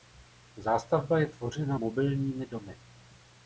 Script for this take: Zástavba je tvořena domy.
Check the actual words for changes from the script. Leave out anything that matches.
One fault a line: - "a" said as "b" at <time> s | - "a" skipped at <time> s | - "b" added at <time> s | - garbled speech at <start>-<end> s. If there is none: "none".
- "mobilními" added at 1.7 s